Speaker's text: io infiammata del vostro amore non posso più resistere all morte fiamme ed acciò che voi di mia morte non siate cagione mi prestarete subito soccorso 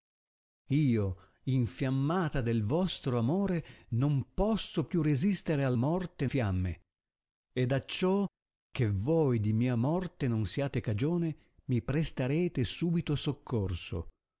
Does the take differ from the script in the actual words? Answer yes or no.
no